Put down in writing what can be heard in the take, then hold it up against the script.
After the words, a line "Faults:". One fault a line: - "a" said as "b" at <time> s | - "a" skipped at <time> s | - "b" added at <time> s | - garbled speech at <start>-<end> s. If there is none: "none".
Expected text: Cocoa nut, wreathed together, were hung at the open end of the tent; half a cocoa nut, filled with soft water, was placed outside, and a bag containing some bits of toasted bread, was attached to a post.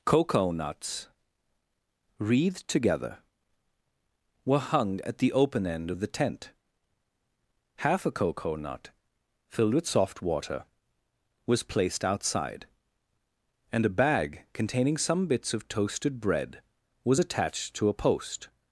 Cocoa nuts, wreathed together, were hung at the open end of the tent; half a cocoa nut, filled with soft water, was placed outside, and a bag containing some bits of toasted bread, was attached to a post.
Faults:
- "nut" said as "nuts" at 0.5 s